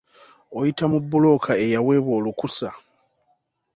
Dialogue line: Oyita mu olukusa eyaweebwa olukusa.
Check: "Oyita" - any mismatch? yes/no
no